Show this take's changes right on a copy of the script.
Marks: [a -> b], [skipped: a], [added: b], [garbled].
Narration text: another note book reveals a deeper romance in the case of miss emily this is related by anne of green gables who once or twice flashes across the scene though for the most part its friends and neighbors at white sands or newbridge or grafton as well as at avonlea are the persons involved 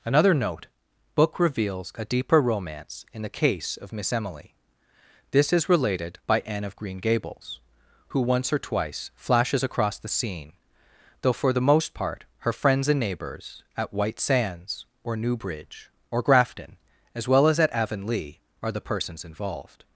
another note book reveals a deeper romance in the case of miss emily this is related by anne of green gables who once or twice flashes across the scene though for the most part [its -> her] friends and neighbors at white sands or newbridge or grafton as well as at avonlea are the persons involved